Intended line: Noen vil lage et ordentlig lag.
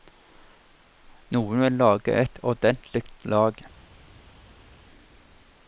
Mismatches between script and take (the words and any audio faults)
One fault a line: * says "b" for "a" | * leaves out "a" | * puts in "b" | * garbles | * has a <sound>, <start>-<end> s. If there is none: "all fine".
all fine